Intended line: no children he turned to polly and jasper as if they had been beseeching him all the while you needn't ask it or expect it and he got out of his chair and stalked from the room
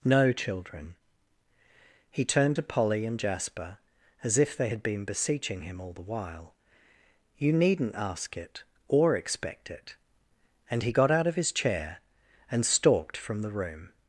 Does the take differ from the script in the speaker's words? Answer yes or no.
no